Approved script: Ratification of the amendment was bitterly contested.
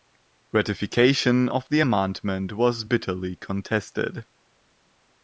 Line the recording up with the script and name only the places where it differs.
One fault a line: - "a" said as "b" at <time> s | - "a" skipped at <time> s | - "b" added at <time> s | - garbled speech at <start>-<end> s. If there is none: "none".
none